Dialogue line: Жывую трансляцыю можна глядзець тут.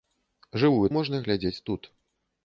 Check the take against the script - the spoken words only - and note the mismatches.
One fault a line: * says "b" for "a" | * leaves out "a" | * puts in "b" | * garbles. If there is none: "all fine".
* leaves out "трансляцыю"